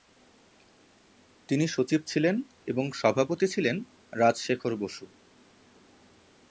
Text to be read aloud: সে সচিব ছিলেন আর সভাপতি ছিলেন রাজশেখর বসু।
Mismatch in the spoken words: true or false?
true